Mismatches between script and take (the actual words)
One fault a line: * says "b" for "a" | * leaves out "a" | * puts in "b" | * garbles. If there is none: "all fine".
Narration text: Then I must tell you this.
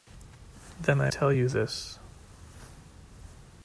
* leaves out "must"